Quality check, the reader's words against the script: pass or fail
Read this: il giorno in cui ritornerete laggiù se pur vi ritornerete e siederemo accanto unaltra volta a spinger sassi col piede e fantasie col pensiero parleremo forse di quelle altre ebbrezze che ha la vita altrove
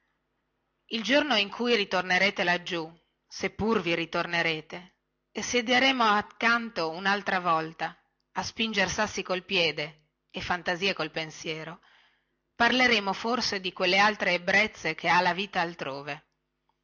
pass